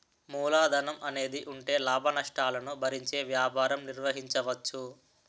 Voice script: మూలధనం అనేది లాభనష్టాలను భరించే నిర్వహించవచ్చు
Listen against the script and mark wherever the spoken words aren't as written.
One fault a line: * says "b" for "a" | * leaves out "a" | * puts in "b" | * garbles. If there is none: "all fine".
* puts in "ఉంటే"
* puts in "వ్యాపారం"